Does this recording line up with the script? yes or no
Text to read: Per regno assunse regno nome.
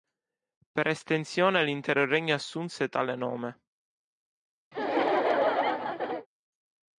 no